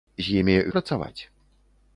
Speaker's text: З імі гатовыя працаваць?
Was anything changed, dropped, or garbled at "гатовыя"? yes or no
yes